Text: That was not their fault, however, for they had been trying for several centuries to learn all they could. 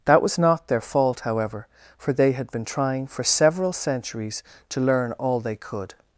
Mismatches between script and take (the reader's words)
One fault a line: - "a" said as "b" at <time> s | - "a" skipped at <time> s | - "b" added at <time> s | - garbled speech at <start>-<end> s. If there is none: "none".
none